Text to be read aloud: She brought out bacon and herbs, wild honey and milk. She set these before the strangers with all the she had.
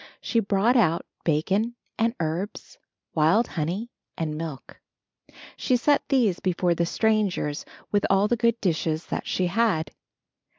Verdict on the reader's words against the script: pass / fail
fail